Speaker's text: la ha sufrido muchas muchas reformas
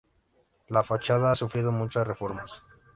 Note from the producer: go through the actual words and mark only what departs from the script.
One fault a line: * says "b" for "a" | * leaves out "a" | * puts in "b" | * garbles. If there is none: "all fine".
* puts in "fachada"
* leaves out "muchas"